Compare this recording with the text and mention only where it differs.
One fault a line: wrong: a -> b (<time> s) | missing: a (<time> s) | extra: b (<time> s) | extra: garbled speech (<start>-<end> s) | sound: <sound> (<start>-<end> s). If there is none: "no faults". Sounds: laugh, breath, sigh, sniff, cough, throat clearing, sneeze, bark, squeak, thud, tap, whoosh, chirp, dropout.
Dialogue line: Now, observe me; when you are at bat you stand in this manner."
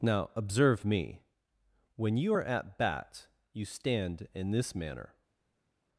no faults